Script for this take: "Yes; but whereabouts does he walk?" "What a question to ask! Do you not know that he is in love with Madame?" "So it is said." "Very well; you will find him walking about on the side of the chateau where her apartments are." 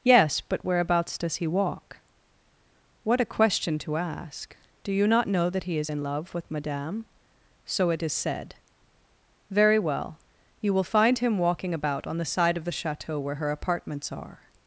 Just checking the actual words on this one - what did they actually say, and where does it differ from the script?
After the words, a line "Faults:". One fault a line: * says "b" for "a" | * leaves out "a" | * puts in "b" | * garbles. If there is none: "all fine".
"Yes; but whereabouts does he walk?" "What a question to ask! Do you not know that he is in love with Madame?" "So it is said." "Very well; you will find him walking about on the side of the chateau where her apartments are."
Faults:
all fine